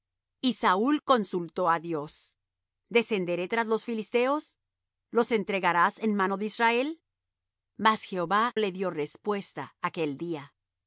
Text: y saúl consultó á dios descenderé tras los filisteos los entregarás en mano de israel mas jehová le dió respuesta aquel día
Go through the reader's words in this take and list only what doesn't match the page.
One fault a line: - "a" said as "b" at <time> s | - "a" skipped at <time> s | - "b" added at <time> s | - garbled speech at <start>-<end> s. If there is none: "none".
none